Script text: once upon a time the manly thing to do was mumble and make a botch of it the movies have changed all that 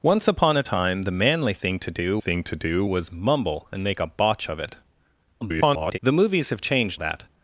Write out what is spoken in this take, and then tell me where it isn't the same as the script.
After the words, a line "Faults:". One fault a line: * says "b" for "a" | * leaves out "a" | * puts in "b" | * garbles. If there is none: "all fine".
once upon a time the manly thing to do thing to do was mumble and make a botch of it [garbled] the movies have changed that
Faults:
* puts in "thing to do"
* garbles
* leaves out "all"